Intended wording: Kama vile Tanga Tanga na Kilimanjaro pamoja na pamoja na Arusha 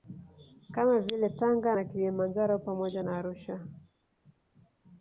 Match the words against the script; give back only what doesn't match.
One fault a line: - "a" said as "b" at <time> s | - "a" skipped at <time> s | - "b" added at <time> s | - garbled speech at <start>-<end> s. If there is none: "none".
- "Tanga" skipped at 1.8 s
- "pamoja na" skipped at 3.2 s